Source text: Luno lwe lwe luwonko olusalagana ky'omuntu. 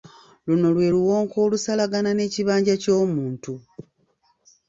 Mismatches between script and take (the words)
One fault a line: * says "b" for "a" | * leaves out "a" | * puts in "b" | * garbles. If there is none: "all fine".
* leaves out "lwe"
* puts in "n'ekibanja"